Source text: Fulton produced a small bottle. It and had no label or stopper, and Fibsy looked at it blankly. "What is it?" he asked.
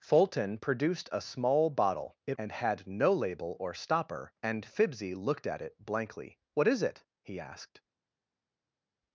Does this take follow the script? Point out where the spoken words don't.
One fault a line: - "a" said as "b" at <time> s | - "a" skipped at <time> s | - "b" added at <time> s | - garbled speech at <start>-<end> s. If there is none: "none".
none